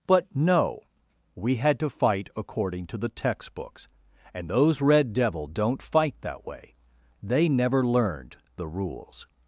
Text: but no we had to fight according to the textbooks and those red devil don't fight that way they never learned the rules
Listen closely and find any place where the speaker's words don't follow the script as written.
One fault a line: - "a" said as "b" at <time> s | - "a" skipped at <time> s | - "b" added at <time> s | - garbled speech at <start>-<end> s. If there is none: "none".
none